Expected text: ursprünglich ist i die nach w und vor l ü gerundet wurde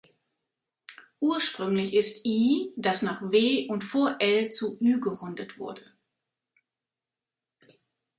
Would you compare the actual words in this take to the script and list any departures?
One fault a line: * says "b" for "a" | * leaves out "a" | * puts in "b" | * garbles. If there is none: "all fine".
* says "das" for "die"
* puts in "zu"